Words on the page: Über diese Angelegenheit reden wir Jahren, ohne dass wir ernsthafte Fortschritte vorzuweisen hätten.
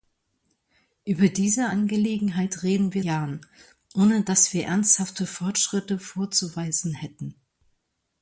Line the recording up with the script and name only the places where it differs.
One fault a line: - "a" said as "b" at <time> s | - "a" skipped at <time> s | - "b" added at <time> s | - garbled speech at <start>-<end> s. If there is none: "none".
none